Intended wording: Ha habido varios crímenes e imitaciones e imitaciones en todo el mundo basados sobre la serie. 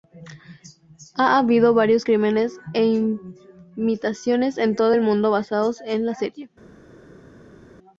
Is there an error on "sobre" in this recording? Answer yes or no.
yes